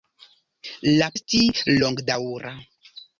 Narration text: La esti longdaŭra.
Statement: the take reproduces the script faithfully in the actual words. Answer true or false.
true